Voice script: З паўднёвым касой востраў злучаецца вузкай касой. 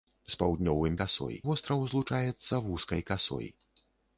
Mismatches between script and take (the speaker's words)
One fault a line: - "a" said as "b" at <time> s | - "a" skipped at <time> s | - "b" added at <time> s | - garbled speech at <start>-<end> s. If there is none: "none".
none